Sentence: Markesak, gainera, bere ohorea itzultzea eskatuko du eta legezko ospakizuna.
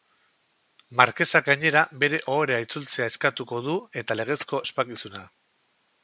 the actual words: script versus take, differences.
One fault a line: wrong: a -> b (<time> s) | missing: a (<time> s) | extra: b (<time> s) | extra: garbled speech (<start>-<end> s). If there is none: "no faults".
no faults